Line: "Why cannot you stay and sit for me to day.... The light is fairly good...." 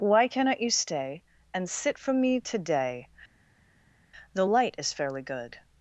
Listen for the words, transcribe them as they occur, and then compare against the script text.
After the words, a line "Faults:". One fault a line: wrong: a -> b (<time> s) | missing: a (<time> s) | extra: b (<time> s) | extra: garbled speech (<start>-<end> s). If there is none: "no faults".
"Why cannot you stay and sit from me to day.... The light is fairly good...."
Faults:
wrong: for -> from (2.0 s)